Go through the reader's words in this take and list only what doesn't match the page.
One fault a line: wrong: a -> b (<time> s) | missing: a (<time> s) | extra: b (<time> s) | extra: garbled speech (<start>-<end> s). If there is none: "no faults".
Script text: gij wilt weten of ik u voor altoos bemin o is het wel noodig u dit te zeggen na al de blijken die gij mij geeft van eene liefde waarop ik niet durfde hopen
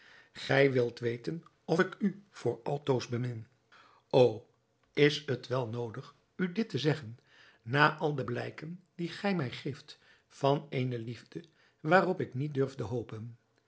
no faults